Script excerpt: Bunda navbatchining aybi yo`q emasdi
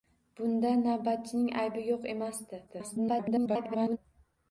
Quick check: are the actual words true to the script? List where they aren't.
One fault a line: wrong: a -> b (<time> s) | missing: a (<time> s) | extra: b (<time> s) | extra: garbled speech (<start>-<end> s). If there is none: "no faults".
extra: garbled speech (2.7-4.0 s)